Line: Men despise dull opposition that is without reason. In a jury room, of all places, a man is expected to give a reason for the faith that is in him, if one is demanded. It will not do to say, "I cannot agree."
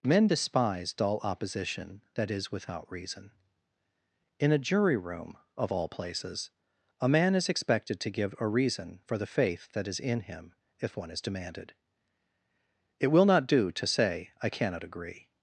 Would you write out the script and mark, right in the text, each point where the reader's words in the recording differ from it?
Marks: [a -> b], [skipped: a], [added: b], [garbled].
Men despise dull opposition that is without reason. In a jury room, of all places, a man is expected to give a reason for the faith that is in him, if one is demanded. It will not do to say, "I cannot agree."